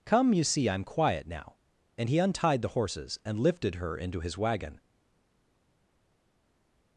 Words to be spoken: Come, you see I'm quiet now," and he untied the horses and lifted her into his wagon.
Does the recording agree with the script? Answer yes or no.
yes